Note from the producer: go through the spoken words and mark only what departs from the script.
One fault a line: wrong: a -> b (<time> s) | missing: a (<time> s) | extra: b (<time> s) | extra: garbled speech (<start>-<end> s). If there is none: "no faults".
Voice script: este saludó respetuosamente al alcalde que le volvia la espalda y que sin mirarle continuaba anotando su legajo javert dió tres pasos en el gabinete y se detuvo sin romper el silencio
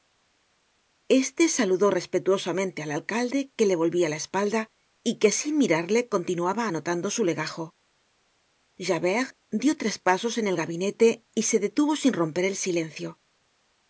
no faults